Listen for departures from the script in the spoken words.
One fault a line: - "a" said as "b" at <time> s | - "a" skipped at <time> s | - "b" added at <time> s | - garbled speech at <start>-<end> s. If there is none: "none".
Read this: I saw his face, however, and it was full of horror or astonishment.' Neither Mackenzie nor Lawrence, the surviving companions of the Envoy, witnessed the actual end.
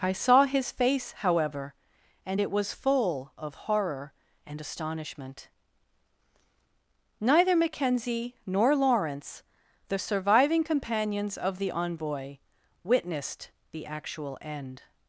- "or" said as "and" at 4.5 s